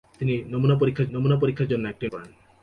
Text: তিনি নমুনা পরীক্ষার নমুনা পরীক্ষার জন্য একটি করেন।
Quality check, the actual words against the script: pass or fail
pass